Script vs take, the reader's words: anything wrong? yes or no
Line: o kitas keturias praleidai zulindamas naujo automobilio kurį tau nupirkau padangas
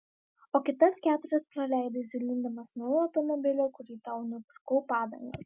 no